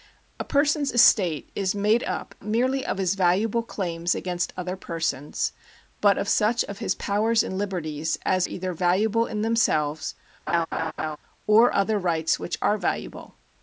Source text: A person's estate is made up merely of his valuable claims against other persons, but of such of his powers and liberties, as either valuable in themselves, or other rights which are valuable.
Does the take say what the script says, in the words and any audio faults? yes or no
no